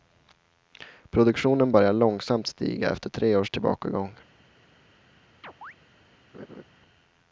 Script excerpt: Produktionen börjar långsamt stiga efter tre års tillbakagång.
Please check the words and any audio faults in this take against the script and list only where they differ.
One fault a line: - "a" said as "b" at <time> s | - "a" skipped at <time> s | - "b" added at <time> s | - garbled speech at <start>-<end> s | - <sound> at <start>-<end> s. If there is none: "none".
- chirp at 5.4-5.7 s
- laugh at 6.3-6.6 s